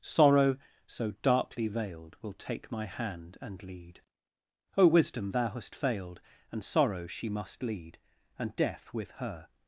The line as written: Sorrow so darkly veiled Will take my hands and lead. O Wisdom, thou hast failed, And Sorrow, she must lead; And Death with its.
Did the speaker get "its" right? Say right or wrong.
wrong